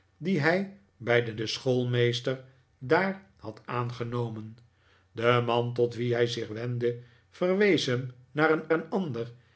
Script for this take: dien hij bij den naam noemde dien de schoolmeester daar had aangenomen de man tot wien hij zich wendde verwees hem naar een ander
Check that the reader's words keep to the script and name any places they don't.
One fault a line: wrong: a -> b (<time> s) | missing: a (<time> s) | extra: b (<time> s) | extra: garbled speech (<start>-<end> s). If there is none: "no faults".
missing: naam noemde dien (1.4 s)
extra: een (8.7 s)